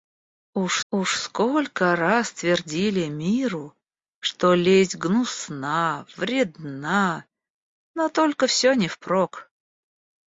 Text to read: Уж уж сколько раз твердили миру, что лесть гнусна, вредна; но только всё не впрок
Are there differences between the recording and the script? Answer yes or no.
no